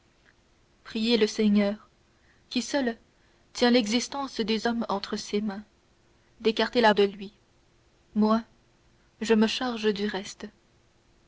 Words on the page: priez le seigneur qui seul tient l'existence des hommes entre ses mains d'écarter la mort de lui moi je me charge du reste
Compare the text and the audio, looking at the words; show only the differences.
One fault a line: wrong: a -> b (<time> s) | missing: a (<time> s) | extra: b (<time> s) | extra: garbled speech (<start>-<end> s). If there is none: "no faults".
missing: mort (6.9 s)